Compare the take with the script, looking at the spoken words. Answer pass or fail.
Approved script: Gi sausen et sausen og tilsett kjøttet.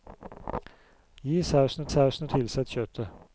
pass